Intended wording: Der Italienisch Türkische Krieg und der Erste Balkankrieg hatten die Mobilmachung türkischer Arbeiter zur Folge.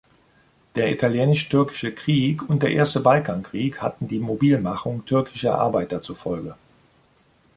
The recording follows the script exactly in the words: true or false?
true